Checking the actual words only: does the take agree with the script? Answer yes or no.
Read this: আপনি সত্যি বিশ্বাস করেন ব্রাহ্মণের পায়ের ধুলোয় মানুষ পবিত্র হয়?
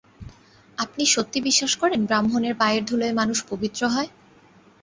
yes